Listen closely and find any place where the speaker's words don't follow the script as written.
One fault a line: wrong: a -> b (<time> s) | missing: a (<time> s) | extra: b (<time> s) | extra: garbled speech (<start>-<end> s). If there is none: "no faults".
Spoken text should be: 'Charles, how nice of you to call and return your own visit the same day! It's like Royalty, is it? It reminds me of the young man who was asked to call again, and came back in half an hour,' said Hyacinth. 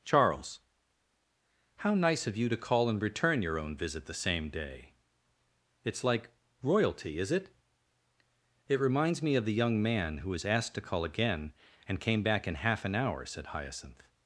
no faults